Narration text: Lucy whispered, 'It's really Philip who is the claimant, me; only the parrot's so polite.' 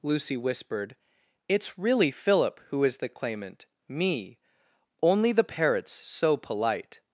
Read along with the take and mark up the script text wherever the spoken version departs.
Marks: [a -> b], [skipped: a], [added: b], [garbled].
Lucy whispered, 'It's really Philip who is the claimant, me; only the parrot's so polite.'